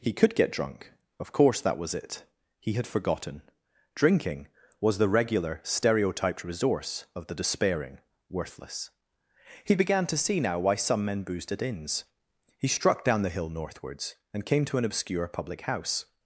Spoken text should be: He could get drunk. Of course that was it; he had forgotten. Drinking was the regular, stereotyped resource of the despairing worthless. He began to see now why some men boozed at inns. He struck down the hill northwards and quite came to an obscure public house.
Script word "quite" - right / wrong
wrong